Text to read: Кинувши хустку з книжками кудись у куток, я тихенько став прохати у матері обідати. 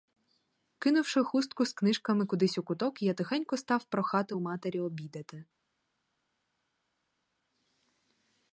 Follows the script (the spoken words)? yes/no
yes